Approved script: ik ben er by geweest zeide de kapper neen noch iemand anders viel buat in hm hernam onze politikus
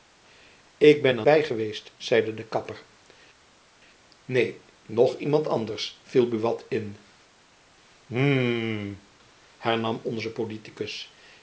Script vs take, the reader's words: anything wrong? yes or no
no